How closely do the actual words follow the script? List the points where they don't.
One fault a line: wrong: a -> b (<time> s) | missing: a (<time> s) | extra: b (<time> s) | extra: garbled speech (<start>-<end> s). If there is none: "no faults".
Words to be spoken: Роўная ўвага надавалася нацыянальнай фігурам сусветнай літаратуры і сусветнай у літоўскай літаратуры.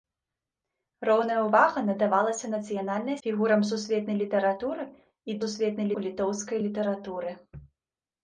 no faults